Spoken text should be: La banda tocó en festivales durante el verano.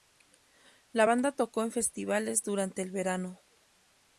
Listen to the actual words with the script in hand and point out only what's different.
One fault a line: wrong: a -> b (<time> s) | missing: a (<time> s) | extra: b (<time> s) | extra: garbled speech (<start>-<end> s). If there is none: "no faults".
no faults